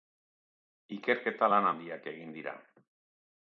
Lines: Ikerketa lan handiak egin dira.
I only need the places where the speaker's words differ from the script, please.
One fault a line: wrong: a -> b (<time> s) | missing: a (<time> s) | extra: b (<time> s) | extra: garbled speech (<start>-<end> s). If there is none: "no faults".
no faults